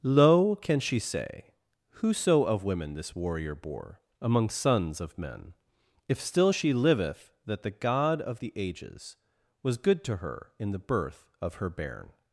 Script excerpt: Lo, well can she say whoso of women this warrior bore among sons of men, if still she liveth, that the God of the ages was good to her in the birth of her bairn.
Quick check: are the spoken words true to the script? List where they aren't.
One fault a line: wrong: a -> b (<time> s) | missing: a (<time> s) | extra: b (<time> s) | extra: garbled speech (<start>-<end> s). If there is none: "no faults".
missing: well (0.6 s)